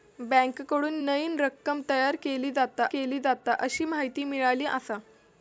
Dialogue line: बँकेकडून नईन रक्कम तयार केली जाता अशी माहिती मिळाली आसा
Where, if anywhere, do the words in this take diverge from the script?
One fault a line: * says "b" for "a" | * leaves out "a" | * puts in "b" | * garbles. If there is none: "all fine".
* puts in "केली जाता"